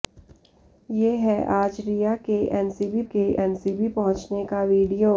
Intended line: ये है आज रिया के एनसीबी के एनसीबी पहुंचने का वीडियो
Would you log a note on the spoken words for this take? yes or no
no